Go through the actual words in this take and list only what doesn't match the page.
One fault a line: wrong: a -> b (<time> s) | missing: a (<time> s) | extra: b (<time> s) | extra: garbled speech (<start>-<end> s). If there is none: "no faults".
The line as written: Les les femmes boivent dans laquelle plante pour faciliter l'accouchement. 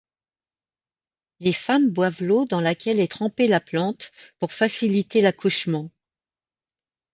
missing: les (1.5 s)
extra: l'eau (2.2 s)
extra: est trempée la (3.0 s)